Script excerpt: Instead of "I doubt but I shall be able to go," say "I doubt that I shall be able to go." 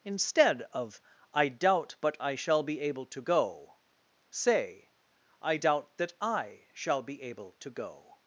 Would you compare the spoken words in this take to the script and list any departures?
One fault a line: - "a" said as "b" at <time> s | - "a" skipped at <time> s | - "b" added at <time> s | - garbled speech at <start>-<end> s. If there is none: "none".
none